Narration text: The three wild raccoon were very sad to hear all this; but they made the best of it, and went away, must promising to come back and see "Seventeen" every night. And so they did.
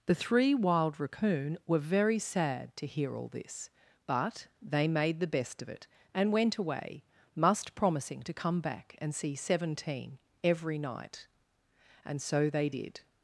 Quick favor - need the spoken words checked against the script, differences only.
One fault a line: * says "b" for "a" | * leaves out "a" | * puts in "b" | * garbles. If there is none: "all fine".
all fine